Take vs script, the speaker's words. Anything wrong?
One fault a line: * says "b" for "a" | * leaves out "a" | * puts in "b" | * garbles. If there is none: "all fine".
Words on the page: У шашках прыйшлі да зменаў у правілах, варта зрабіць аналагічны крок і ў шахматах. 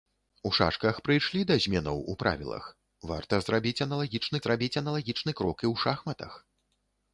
* puts in "зрабіць аналагічны"